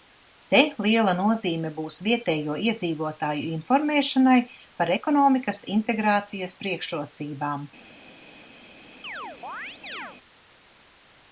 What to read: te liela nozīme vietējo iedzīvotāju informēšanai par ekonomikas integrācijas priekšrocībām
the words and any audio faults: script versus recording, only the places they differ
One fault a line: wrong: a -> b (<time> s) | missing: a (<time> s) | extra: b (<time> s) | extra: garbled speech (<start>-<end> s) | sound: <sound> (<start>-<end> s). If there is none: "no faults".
extra: būs (1.8 s)
sound: chirp (9.0-10.2 s)